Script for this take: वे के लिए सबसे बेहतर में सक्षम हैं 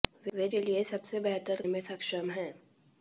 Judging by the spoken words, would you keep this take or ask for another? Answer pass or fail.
pass